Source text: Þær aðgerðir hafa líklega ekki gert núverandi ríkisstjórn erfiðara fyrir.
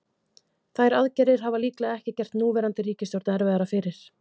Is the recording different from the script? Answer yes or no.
no